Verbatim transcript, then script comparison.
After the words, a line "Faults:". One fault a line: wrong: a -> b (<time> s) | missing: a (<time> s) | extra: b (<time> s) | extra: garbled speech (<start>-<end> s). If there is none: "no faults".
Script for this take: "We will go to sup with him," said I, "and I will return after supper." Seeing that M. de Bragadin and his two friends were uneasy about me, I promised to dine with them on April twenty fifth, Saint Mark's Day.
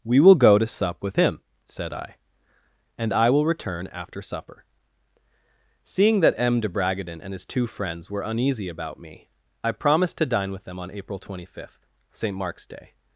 "We will go to sup with him," said I, "and I will return after supper." Seeing that M. de Bragadin and his two friends were uneasy about me, I promised to dine with them on April twenty fifth, Saint Mark's Day.
Faults:
no faults